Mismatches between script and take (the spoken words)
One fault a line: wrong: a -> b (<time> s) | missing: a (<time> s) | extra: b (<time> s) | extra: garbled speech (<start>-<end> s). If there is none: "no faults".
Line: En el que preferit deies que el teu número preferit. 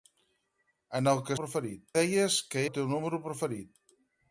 no faults